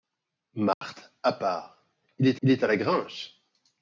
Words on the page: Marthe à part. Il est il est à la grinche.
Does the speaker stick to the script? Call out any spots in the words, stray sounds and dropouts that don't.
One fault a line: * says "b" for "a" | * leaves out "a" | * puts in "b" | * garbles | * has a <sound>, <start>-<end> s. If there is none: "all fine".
* has a dropout, 0.7-0.8 s